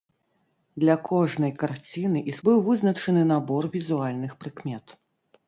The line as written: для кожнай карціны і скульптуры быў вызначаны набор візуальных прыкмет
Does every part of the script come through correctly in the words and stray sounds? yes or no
no